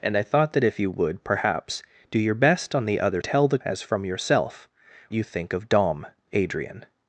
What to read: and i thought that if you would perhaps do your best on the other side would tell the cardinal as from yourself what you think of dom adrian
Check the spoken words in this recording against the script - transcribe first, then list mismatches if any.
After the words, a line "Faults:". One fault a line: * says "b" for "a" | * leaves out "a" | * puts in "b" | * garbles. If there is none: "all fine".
and i thought that if you would perhaps do your best on the other tell the as from yourself you think of dom adrian
Faults:
* leaves out "side would"
* leaves out "cardinal"
* leaves out "what"